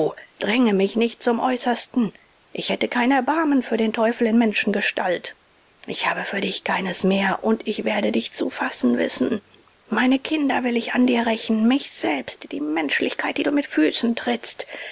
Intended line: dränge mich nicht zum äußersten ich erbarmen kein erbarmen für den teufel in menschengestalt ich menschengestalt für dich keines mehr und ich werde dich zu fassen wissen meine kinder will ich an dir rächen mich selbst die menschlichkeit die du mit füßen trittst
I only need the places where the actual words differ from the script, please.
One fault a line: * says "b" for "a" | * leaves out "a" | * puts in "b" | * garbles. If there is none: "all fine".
* says "hätte" for "erbarmen"
* says "habe" for "menschengestalt"